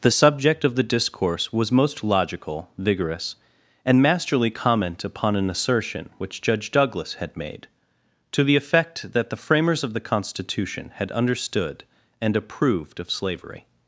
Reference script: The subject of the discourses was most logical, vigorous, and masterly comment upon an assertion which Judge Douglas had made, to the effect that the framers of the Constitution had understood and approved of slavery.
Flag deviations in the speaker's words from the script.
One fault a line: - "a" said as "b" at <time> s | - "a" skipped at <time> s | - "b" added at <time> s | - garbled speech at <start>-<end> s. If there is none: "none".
- "discourses" said as "discourse" at 0.9 s